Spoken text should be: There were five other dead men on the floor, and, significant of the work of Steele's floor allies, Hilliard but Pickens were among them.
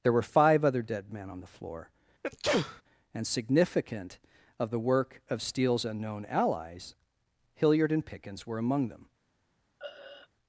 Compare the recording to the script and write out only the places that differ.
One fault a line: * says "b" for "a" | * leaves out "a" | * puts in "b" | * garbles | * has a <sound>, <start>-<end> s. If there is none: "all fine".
* has a sneeze, 2.2-2.8 s
* says "unknown" for "floor"
* says "and" for "but"
* has a throat clearing, 9.8-10.3 s